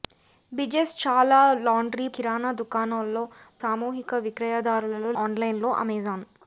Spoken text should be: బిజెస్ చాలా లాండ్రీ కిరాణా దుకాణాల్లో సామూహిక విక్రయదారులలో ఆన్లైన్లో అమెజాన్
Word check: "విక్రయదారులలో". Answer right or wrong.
right